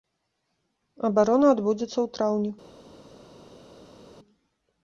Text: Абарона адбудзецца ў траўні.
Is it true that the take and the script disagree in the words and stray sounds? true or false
false